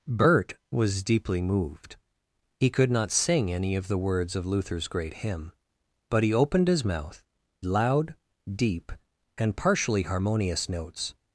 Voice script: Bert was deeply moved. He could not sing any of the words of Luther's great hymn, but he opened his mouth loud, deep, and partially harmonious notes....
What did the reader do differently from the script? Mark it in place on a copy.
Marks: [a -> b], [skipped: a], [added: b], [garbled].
Bert was deeply moved. He could not sing any of the words of Luther's great hymn, but he opened his mouth loud, deep, and partially harmonious notes....